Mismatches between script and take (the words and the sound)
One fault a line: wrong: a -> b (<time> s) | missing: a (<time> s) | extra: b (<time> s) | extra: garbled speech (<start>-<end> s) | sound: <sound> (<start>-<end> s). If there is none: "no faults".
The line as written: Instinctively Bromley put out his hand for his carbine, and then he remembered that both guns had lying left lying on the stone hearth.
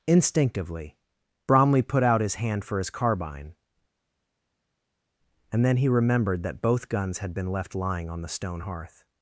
wrong: lying -> been (7.3 s)